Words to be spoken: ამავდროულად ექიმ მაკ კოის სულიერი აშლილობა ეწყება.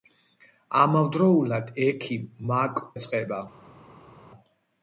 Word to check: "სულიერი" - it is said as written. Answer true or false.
false